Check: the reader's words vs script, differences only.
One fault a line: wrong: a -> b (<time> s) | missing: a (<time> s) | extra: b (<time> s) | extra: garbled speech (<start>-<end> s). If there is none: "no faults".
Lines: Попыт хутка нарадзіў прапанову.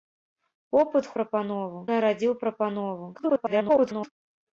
wrong: хутка -> прапанову (1.1 s)
extra: garbled speech (3.1-4.1 s)